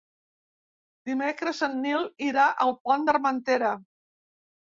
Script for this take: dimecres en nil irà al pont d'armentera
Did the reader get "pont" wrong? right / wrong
right